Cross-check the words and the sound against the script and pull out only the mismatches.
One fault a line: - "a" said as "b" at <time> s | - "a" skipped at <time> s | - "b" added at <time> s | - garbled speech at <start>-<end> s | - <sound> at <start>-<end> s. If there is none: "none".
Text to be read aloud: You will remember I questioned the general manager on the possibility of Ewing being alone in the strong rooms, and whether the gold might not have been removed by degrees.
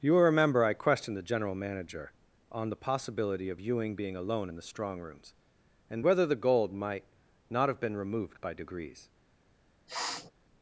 - sniff at 9.9-10.3 s